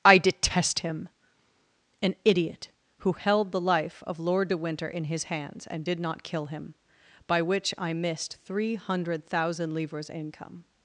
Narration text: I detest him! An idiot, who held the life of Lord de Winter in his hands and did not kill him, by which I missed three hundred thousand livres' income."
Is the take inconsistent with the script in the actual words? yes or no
no